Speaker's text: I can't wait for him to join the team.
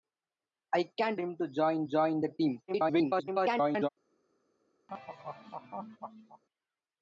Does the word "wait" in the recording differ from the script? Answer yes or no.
yes